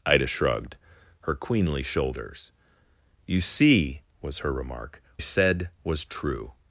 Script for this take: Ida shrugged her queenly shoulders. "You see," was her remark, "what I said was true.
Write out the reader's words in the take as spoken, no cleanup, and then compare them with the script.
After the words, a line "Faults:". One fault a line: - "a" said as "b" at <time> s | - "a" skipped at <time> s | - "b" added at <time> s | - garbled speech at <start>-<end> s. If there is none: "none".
Ida shrugged her queenly shoulders. "You see," was her remark, "said was true.
Faults:
- "what I" skipped at 5.0 s